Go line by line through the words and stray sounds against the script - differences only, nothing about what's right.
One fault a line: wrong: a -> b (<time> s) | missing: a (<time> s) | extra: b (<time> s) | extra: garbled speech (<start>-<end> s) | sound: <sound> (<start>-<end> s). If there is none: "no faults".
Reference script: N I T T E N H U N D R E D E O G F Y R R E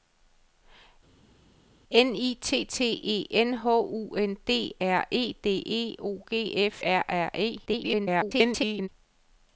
missing: Y (6.8 s)
extra: garbled speech (7.7-8.9 s)